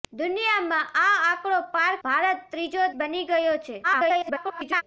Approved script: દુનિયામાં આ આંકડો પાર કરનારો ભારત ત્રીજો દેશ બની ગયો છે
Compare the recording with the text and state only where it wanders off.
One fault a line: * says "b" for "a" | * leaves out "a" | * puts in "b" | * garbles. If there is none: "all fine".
* leaves out "કરનારો"
* leaves out "દેશ"
* garbles